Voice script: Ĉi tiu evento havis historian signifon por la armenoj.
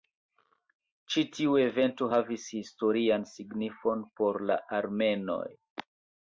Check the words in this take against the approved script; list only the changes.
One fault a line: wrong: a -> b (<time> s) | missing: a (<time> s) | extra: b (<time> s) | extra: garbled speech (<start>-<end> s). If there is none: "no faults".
no faults